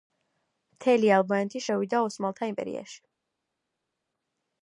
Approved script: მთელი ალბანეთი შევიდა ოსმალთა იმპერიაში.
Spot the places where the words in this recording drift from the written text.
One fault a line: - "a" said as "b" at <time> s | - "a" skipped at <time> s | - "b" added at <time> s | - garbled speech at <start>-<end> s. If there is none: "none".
none